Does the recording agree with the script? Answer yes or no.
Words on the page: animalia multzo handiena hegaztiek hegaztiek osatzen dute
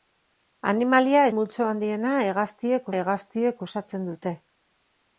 yes